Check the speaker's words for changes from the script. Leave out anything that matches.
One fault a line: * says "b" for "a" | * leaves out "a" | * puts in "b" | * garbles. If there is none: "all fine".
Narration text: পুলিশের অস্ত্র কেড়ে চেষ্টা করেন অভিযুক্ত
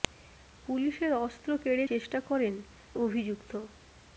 all fine